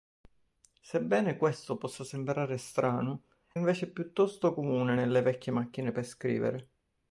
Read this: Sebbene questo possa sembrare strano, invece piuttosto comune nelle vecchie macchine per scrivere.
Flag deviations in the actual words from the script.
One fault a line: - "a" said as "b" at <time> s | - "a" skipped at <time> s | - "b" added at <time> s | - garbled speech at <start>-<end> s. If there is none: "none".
none